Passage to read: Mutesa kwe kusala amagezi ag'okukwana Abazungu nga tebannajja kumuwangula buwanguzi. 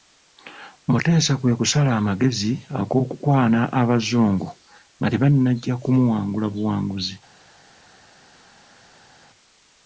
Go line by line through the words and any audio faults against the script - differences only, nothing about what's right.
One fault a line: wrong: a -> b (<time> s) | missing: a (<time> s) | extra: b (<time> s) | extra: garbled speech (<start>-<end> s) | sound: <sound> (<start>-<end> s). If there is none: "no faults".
no faults